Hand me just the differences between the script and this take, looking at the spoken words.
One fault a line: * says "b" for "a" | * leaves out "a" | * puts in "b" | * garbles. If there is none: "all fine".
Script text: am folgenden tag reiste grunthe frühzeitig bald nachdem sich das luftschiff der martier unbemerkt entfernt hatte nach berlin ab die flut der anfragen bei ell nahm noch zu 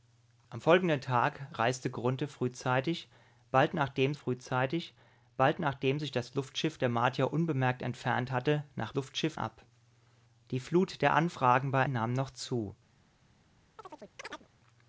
* puts in "frühzeitig bald nachdem"
* says "luftschiff" for "berlin"
* leaves out "ell"